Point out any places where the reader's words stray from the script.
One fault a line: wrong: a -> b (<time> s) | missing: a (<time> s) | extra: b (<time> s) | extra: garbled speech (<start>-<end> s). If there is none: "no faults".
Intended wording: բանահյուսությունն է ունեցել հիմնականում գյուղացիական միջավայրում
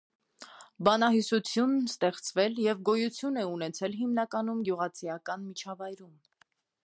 extra: ստեղծվել և գոյություն (1.9 s)